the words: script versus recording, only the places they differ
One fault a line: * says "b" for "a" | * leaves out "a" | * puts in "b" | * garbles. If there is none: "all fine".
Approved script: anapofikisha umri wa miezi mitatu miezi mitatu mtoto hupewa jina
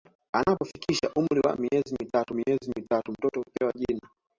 all fine